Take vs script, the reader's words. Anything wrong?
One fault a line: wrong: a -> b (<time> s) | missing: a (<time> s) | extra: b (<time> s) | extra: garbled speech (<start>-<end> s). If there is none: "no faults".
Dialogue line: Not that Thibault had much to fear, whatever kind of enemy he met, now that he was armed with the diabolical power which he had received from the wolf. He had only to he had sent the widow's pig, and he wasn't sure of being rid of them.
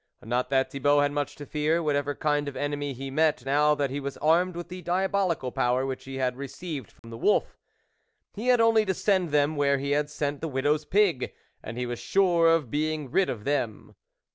extra: send them where (8.9 s)
wrong: wasn't -> was (11.9 s)